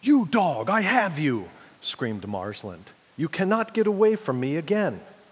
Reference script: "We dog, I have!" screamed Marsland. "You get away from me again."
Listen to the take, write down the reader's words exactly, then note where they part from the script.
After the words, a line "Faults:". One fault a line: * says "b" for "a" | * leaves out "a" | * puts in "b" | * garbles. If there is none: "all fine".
"You dog, I have you!" screamed Marsland. "You cannot get away from me again."
Faults:
* says "You" for "We"
* puts in "you"
* puts in "cannot"